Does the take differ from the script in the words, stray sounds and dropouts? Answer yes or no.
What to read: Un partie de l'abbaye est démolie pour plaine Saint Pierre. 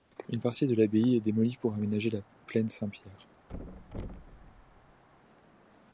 yes